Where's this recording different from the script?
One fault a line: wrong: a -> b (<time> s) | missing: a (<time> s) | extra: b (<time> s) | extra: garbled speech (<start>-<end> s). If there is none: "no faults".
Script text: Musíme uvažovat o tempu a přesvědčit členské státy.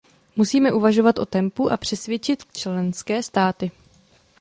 no faults